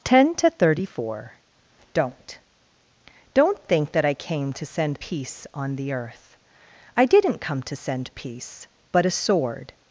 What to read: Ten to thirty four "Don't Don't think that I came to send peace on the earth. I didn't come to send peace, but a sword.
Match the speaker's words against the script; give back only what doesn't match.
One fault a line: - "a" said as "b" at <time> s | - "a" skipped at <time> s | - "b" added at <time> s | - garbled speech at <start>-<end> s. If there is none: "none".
none